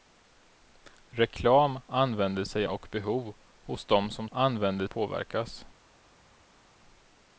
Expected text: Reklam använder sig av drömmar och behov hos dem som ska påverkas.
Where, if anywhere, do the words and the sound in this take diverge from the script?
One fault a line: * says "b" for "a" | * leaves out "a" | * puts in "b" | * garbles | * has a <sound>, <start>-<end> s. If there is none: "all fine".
* leaves out "av drömmar"
* says "använder" for "ska"